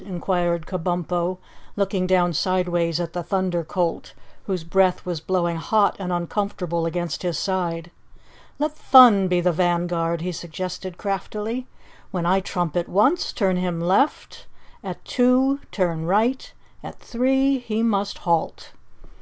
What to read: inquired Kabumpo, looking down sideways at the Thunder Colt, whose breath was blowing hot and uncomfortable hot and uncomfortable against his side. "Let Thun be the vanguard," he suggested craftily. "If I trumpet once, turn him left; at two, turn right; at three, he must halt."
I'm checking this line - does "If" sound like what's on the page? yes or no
no